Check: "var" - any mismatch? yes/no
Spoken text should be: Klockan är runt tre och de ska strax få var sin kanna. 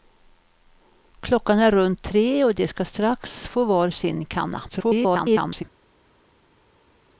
no